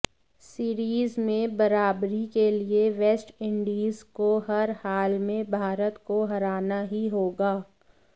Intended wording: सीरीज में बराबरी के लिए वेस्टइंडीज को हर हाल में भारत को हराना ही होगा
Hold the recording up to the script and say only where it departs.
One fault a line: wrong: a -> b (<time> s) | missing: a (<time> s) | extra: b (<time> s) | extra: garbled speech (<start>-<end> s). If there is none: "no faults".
no faults